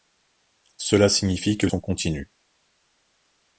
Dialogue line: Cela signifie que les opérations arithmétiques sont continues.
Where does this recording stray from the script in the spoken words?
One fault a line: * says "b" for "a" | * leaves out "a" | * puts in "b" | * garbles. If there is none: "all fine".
* leaves out "les opérations arithmétiques"